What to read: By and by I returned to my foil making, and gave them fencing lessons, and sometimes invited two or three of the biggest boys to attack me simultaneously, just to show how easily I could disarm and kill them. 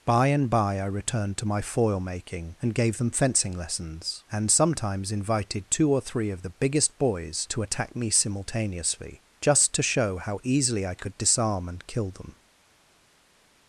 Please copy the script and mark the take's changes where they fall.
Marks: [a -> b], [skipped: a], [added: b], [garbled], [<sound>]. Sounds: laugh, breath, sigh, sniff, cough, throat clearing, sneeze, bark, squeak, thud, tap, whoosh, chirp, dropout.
By and by I returned to my foil making, and gave them fencing lessons, and sometimes invited two or three of the biggest boys to attack me simultaneously, just to show how easily I could disarm and kill them.